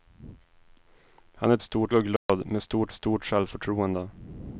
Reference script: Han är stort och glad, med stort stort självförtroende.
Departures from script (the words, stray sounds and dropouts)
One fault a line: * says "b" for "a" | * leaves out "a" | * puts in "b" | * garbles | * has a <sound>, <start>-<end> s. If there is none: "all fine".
* has a dropout, 2.2-2.3 s